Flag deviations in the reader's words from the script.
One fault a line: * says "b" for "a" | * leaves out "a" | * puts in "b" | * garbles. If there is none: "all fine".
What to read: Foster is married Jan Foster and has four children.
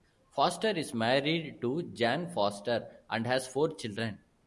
* puts in "to"